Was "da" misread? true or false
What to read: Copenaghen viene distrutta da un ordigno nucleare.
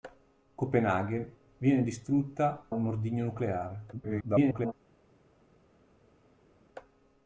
true